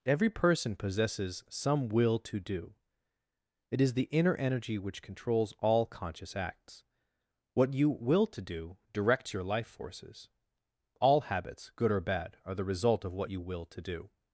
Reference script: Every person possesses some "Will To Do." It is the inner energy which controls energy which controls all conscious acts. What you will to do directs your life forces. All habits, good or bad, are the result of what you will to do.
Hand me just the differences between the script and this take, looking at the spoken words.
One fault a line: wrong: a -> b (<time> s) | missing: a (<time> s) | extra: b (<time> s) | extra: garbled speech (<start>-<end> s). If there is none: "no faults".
missing: energy which controls (5.5 s)